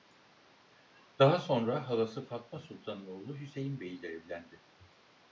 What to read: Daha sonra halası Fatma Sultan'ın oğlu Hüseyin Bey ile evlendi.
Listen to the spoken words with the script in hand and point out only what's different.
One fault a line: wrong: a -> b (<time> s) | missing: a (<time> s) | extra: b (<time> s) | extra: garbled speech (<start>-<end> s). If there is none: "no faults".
no faults